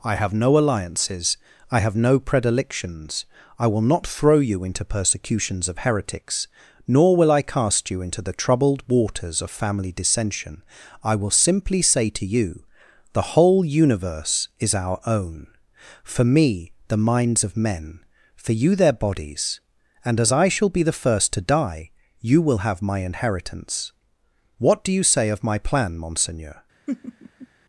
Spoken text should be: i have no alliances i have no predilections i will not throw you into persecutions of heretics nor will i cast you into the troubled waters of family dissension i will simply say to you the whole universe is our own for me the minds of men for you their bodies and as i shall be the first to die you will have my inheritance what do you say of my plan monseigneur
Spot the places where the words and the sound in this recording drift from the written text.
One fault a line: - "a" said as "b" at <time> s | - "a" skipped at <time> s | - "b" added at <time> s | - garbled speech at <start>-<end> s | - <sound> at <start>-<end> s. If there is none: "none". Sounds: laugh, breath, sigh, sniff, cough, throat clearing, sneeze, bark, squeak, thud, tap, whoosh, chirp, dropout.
- laugh at 26.9-27.5 s